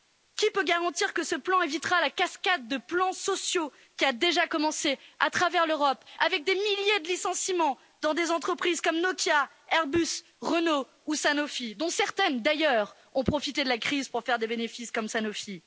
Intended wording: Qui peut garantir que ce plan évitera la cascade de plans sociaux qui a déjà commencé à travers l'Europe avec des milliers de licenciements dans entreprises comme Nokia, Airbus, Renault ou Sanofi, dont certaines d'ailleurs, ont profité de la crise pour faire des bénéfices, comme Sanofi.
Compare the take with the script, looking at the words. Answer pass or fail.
fail